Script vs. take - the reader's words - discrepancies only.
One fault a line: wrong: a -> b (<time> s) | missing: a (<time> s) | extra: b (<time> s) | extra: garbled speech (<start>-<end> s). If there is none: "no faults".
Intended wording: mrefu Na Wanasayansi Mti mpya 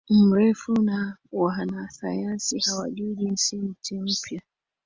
extra: hawajui Jinsi (2.6 s)